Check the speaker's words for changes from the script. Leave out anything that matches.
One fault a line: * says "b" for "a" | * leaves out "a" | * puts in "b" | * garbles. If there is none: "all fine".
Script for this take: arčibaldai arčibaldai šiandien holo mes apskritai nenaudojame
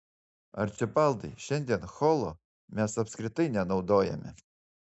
* leaves out "arčibaldai"